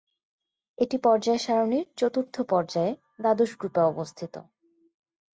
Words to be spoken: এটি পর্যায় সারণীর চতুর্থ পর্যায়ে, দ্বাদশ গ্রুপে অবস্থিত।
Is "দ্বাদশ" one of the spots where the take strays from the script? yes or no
no